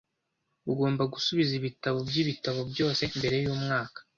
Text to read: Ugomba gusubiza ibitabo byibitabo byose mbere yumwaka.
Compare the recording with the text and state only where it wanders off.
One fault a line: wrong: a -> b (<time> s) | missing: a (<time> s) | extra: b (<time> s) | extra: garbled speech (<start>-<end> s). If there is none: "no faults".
no faults